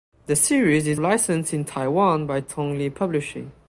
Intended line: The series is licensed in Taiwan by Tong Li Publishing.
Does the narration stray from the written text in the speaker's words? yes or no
no